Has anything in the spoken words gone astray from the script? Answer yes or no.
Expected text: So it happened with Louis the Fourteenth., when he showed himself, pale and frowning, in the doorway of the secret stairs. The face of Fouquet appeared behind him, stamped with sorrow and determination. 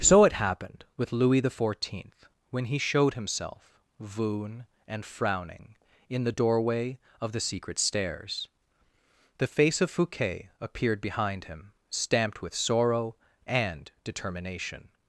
yes